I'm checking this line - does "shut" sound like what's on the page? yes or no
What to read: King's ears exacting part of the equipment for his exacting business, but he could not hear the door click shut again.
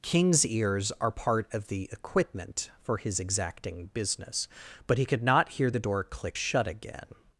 yes